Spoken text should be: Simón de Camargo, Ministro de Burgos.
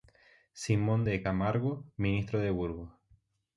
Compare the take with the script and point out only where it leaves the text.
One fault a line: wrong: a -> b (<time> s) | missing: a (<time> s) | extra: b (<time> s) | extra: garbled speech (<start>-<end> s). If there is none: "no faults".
no faults